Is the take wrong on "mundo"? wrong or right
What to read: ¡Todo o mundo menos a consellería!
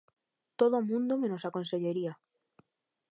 right